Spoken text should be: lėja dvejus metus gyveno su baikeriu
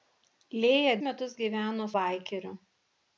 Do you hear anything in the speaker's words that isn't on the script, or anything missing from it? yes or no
yes